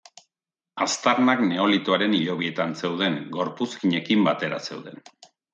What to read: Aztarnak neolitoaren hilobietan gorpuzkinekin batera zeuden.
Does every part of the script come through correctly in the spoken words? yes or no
no